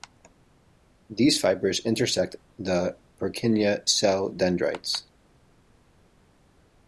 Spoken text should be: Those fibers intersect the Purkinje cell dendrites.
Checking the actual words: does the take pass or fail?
fail